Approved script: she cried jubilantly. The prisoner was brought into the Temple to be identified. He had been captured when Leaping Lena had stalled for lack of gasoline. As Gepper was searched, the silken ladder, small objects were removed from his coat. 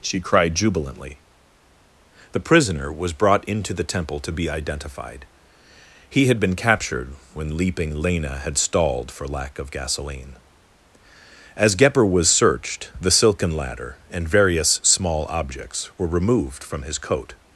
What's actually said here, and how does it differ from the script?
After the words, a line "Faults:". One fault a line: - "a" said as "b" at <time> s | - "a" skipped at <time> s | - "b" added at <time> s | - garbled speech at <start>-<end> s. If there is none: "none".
she cried jubilantly. The prisoner was brought into the Temple to be identified. He had been captured when Leaping Lena had stalled for lack of gasoline. As Gepper was searched, the silken ladder, and various small objects were removed from his coat.
Faults:
- "and various" added at 14.1 s